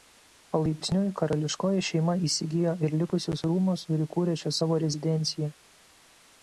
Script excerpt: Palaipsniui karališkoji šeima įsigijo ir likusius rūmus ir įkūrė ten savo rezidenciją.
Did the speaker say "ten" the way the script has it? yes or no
no